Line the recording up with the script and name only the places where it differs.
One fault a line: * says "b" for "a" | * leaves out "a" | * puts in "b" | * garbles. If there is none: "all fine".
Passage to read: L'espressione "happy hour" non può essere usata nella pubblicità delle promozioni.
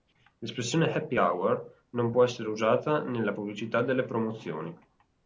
all fine